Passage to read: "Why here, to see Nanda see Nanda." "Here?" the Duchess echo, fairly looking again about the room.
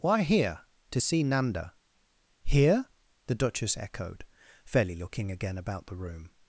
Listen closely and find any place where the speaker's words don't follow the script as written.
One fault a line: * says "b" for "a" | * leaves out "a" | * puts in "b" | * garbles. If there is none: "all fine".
* leaves out "see Nanda"
* says "echoed" for "echo"